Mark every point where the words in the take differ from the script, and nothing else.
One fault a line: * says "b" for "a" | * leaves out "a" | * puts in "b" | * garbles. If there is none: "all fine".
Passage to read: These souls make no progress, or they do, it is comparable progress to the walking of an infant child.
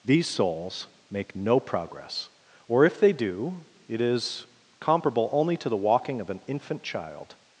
* puts in "if"
* says "only" for "progress"